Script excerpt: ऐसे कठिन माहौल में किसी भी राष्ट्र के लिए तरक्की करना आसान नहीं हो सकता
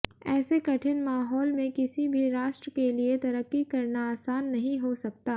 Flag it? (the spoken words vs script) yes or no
no